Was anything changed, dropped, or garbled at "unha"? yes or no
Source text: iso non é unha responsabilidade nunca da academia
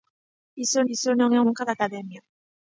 yes